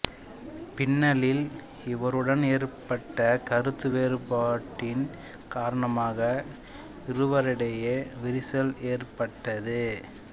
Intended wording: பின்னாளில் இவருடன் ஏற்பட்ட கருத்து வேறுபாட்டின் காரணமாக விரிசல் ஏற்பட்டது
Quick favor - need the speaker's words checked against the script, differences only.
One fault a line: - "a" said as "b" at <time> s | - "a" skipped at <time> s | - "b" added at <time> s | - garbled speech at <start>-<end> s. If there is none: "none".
- "இருவரிடையே" added at 7.1 s